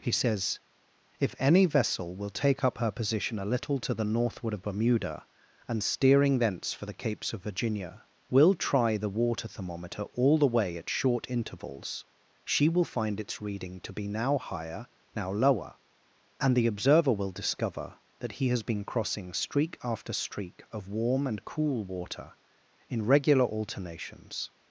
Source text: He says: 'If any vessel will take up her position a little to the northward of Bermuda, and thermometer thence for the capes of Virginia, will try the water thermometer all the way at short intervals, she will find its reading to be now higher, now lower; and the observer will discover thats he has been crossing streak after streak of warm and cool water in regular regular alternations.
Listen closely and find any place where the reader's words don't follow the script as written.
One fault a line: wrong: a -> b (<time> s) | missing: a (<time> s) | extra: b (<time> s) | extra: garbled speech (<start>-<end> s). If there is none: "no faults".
wrong: thermometer -> steering (5.8 s)
wrong: thats -> that (18.2 s)
missing: regular (23.4 s)